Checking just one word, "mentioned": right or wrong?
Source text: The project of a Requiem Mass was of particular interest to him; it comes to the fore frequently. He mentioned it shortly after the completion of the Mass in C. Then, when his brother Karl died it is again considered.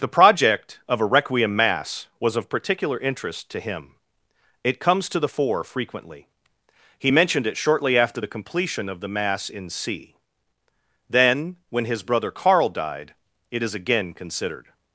right